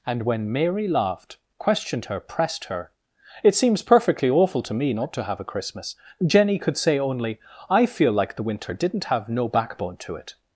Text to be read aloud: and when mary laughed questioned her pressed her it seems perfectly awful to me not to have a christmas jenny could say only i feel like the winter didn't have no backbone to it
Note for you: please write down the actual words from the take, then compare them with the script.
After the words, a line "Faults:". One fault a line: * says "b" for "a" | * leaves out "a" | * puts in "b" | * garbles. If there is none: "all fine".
and when mary laughed questioned her pressed her it seems perfectly awful to me not to have a christmas jenny could say only i feel like the winter didn't have no backbone to it
Faults:
all fine